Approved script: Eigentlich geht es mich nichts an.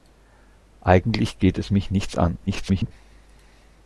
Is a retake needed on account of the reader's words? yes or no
yes